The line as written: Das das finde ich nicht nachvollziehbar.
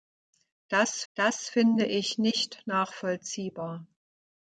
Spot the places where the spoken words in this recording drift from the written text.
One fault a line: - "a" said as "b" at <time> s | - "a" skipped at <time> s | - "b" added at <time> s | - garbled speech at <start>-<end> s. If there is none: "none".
none